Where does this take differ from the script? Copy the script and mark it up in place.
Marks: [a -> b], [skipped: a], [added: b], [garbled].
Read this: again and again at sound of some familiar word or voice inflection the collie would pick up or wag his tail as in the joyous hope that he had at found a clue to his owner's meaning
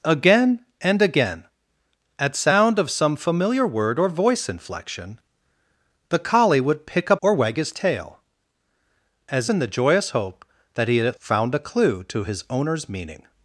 again and again at sound of some familiar word or voice inflection the collie would pick up or wag his tail as in the joyous hope that he had at found a clue to his owner's meaning